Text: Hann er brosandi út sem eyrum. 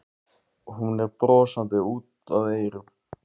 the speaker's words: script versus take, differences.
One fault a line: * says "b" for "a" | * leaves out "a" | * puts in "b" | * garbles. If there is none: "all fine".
* says "Hún" for "Hann"
* says "að" for "sem"